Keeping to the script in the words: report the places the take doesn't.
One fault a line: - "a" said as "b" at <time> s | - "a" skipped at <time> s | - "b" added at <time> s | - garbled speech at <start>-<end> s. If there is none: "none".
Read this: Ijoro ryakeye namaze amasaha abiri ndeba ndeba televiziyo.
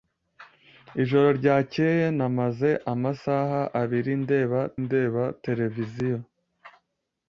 none